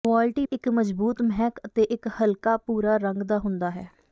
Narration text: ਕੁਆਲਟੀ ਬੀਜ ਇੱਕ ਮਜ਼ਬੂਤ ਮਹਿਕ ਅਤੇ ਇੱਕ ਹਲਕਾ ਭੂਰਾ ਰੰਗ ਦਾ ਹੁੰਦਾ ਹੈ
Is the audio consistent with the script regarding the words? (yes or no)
no